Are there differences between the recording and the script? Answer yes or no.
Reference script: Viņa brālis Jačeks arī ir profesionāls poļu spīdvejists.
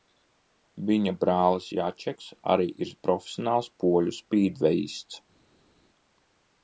no